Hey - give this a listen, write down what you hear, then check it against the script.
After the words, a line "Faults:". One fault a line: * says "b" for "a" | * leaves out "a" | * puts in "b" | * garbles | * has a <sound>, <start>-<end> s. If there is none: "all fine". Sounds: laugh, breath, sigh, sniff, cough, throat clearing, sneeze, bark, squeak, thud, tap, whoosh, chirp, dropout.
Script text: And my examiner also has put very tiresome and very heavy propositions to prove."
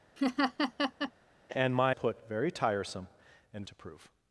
And my put very tiresome and to prove."
Faults:
* has a laugh, 0.2-1.1 s
* leaves out "examiner also has"
* leaves out "very heavy propositions"